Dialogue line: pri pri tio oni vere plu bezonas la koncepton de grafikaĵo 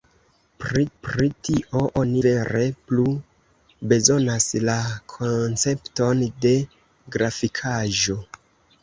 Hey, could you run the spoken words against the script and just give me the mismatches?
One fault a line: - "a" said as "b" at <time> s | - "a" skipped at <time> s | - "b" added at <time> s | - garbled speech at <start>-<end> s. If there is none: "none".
none